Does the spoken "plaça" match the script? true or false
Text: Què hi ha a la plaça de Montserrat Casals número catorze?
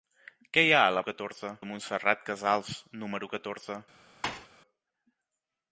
false